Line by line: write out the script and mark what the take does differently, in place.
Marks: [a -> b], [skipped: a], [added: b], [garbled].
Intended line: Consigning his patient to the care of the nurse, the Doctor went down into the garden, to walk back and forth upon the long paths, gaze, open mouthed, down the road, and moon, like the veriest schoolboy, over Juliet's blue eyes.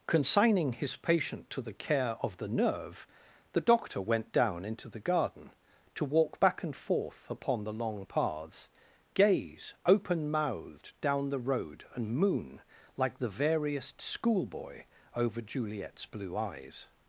Consigning his patient to the care of the [nurse, -> nerve] the Doctor went down into the garden, to walk back and forth upon the long paths, gaze, open mouthed, down the road, and moon, like the veriest schoolboy, over Juliet's blue eyes.